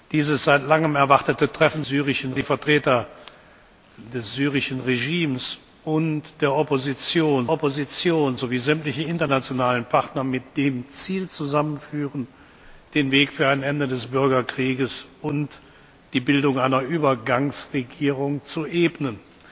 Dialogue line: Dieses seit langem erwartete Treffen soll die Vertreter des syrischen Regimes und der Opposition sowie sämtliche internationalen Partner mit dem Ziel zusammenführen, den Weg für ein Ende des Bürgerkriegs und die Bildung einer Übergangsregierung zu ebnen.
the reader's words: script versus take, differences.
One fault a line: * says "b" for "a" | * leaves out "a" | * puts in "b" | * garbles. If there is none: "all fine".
* says "syrischen" for "soll"
* puts in "Opposition"